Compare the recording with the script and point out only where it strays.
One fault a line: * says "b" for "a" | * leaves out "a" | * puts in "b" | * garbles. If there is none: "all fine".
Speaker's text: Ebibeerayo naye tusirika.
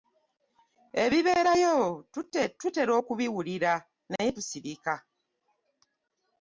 * puts in "tutera okubiwulira"